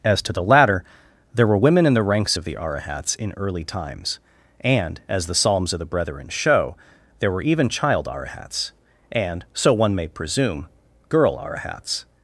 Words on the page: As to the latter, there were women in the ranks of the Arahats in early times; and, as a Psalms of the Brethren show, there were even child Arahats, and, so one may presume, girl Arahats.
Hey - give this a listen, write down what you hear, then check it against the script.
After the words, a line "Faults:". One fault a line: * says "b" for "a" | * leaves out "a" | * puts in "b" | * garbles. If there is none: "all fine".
As to the latter, there were women in the ranks of the Arahats in early times; and, as the Psalms of the Brethren show, there were even child Arahats, and, so one may presume, girl Arahats.
Faults:
* says "the" for "a"